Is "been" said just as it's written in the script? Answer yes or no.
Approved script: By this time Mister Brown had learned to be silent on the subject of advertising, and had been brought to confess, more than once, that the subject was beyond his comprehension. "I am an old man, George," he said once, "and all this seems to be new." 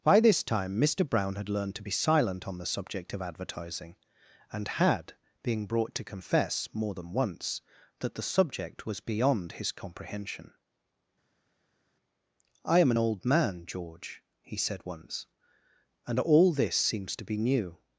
no